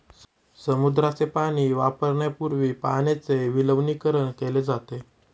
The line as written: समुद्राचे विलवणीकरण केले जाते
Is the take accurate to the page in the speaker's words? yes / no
no